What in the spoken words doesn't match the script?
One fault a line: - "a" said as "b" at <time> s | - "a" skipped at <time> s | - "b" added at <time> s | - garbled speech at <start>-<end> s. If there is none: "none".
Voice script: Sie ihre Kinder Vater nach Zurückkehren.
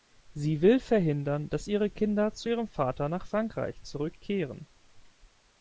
- "will verhindern dass" added at 0.6 s
- "zu ihrem" added at 2.3 s
- "Frankreich" added at 3.3 s